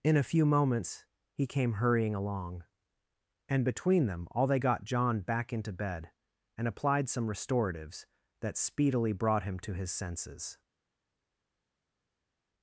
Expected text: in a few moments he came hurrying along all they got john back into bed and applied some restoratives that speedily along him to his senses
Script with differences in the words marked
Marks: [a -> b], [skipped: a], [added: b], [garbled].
in a few moments he came hurrying along [added: and between them] all they got john back into bed and applied some restoratives that speedily [along -> brought] him to his senses